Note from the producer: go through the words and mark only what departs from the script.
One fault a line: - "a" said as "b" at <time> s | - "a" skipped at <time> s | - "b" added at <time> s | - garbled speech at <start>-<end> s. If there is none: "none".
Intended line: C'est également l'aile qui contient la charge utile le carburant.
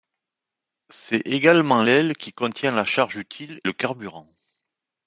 none